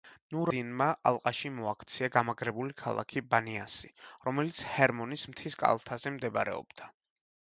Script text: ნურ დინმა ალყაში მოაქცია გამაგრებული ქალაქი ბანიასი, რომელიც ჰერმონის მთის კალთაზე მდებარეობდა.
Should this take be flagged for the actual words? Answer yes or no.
no